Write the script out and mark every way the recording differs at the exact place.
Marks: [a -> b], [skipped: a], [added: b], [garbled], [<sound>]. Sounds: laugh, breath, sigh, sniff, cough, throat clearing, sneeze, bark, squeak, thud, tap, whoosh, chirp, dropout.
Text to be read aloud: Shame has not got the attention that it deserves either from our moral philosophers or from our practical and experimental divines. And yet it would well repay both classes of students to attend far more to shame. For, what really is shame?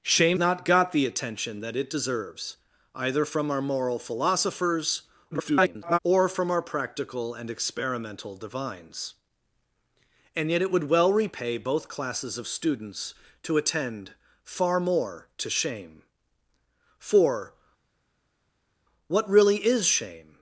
Shame [skipped: has] not got the attention that it deserves either from our moral philosophers [garbled] or from our practical and experimental divines. And yet it would well repay both classes of students to attend far more to shame. For, what really is shame?